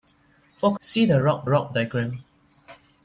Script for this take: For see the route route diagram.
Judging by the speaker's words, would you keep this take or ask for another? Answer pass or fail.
pass